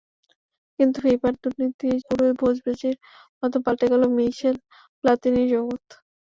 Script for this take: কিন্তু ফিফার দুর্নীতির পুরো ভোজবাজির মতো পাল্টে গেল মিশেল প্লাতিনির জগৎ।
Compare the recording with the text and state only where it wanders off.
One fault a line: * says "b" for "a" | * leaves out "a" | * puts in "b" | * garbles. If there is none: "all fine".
all fine